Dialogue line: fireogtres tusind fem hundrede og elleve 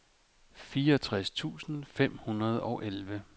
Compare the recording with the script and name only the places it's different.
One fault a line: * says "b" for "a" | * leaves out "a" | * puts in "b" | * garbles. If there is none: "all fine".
all fine